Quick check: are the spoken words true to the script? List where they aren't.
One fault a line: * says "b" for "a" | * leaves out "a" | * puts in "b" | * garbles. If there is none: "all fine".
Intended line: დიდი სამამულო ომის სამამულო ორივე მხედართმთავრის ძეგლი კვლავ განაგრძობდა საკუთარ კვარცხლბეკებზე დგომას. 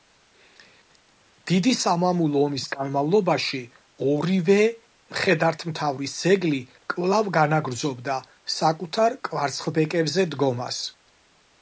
* says "განმავლობაში" for "სამამულო"